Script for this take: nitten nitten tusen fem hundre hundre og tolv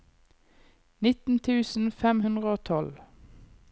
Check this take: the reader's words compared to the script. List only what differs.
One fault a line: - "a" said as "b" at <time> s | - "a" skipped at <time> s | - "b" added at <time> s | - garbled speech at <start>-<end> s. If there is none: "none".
- "nitten" skipped at 1.4 s
- "hundre" skipped at 2.5 s